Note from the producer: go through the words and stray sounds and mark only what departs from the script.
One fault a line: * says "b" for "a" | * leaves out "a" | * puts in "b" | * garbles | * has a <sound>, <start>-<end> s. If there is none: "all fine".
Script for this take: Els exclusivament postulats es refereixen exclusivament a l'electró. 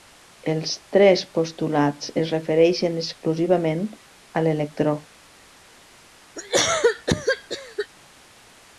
* says "tres" for "exclusivament"
* has a cough, 6.4-7.9 s